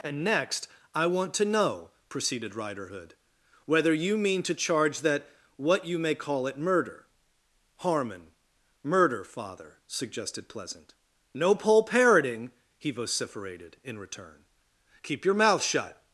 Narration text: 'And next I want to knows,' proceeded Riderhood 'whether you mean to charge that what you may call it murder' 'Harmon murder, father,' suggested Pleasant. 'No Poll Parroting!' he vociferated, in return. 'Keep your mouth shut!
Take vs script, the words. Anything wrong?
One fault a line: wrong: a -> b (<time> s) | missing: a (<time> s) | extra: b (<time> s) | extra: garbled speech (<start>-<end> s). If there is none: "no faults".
wrong: knows -> know (1.4 s)